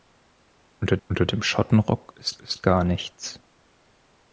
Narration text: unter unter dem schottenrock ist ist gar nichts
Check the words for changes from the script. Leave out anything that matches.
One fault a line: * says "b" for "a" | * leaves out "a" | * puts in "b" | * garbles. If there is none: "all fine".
all fine